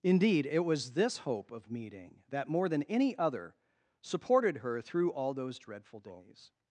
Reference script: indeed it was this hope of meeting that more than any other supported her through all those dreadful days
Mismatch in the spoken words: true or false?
false